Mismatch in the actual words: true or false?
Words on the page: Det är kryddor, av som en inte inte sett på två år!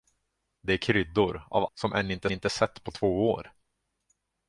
false